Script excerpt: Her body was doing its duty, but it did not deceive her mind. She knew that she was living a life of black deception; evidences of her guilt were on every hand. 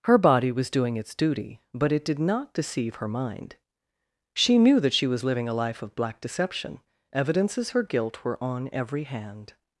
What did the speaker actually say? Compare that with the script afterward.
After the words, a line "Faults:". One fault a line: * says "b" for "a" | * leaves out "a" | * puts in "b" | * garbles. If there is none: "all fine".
Her body was doing its duty, but it did not deceive her mind. She knew that she was living a life of black deception; evidences her guilt were on every hand.
Faults:
* leaves out "of"